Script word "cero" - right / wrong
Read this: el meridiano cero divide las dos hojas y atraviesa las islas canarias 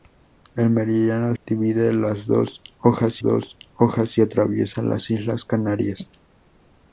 wrong